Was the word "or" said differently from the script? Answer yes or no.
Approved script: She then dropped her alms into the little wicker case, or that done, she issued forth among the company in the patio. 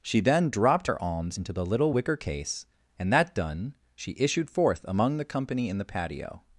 yes